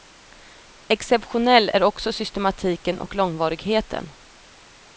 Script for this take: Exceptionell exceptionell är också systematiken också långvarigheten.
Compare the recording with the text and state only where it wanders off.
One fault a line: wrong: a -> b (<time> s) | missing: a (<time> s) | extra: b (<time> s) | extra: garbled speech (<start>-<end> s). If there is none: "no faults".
missing: exceptionell (1.7 s)
wrong: också -> och (3.0 s)